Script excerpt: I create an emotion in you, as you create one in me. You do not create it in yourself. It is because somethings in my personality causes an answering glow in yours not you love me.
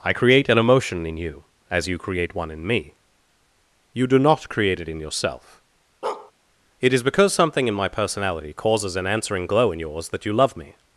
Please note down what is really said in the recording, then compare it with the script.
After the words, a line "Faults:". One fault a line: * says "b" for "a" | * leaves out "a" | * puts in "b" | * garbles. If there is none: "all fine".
I create an emotion in you, as you create one in me. You do not create it in yourself. It is because something in my personality causes an answering glow in yours that you love me.
Faults:
* says "something" for "somethings"
* says "that" for "not"